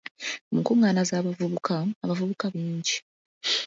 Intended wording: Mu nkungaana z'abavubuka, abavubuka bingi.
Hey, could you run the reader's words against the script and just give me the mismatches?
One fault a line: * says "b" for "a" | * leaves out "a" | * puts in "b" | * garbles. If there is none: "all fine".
all fine